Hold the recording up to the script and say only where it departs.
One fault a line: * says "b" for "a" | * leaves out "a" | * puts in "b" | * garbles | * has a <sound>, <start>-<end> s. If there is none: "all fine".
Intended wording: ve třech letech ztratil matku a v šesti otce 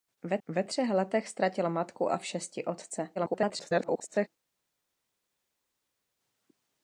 * puts in "ve"
* garbles